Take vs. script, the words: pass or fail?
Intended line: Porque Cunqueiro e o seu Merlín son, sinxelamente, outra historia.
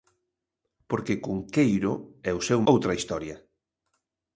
fail